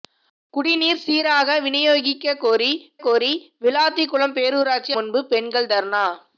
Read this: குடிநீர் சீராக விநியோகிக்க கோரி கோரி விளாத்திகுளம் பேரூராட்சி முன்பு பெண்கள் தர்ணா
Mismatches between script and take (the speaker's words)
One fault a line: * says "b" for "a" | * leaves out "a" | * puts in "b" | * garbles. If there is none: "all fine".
all fine